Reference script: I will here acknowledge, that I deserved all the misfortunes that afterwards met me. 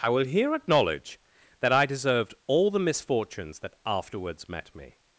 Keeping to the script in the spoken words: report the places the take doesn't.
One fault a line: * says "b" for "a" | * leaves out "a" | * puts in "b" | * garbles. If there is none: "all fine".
all fine